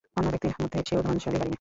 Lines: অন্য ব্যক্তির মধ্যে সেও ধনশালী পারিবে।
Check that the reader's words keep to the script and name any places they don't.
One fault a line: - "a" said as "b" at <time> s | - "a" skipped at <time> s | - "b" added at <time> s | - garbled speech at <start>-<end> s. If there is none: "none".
none